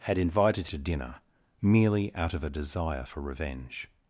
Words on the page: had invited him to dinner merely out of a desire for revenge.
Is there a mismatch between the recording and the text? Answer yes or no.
yes